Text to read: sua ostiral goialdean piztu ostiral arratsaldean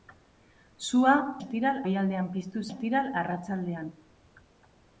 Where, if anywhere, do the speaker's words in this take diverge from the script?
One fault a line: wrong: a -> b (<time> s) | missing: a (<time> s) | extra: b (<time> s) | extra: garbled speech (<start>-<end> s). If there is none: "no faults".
no faults